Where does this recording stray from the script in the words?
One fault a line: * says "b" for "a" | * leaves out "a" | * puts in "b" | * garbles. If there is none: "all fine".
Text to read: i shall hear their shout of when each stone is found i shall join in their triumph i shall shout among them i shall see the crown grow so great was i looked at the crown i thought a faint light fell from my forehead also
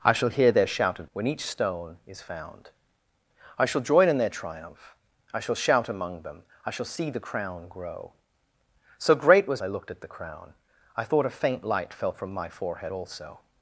all fine